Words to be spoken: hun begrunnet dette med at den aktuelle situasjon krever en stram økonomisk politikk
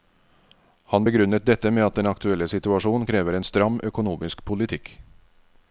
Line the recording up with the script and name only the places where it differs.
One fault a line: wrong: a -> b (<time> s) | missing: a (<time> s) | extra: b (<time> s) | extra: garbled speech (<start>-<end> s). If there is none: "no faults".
wrong: hun -> han (0.9 s)